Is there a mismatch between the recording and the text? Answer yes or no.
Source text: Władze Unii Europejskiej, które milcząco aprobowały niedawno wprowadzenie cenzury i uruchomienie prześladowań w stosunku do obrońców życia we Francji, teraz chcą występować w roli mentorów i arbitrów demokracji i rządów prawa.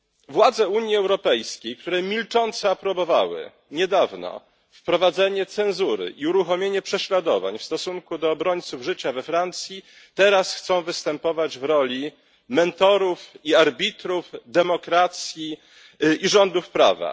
no